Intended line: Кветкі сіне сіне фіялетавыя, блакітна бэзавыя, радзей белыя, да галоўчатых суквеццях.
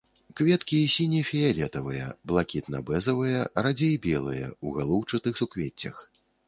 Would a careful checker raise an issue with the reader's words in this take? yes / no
yes